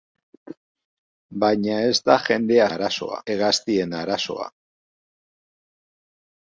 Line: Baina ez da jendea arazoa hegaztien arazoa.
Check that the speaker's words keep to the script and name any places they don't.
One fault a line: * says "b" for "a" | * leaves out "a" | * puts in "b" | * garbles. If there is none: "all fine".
all fine